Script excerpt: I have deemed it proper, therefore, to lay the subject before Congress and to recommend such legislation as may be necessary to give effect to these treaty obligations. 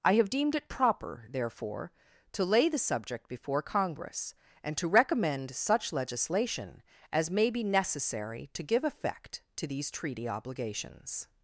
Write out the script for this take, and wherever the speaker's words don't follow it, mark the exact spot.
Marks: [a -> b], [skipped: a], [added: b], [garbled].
I have deemed it proper, therefore, to lay the subject before Congress and to recommend such legislation as may be necessary to give effect to these treaty obligations.